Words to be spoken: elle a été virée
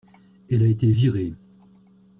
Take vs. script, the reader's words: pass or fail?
pass